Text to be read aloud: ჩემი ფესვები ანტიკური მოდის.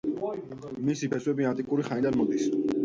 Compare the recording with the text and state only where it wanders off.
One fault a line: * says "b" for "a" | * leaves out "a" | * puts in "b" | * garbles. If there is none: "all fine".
* says "მისი" for "ჩემი"
* puts in "ხანიდან"